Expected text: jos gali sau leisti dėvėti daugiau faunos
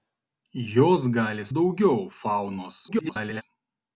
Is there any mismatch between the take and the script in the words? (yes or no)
yes